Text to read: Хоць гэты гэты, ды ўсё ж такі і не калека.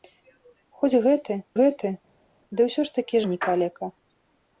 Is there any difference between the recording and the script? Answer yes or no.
no